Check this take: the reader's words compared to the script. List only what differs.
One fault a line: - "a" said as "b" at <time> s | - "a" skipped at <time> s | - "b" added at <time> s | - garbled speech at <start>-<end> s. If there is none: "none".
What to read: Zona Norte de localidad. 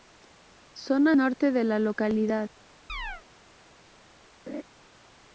- "la" added at 1.6 s